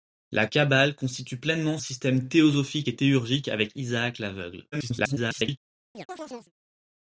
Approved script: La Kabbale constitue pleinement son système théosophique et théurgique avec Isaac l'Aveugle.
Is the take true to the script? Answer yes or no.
no